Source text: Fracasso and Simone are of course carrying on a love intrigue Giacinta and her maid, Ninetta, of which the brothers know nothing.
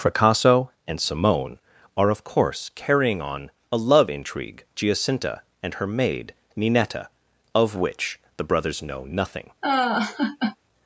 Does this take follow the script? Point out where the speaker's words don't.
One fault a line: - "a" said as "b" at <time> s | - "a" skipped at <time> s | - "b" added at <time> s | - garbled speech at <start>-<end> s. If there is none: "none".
none